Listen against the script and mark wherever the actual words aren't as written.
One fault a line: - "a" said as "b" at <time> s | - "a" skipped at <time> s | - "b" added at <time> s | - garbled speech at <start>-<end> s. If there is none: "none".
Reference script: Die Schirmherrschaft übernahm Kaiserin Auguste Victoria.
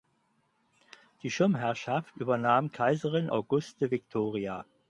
none